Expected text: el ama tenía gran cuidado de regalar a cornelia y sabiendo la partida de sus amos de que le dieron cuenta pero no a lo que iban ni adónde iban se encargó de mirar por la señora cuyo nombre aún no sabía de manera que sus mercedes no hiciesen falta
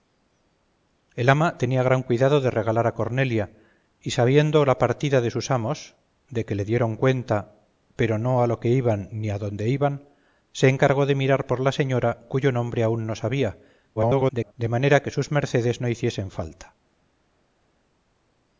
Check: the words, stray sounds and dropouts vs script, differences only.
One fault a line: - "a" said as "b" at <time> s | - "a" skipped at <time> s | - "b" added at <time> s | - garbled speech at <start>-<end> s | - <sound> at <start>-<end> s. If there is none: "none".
- garbled speech at 14.0-14.5 s